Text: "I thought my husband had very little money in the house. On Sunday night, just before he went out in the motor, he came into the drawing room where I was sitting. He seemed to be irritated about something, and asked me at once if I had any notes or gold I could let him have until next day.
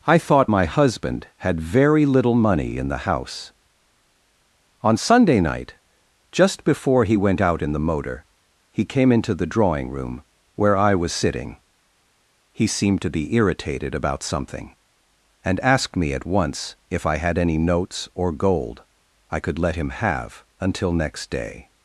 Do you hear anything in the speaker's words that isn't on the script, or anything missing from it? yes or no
no